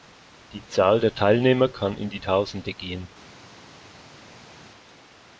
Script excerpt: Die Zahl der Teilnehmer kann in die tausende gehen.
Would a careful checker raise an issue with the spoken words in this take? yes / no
no